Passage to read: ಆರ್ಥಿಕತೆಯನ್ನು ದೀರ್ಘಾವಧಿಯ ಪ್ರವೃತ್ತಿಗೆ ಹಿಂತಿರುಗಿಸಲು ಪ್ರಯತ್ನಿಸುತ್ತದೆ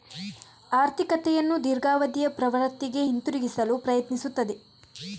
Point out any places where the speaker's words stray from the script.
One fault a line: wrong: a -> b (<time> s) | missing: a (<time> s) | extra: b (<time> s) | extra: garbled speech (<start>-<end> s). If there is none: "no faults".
no faults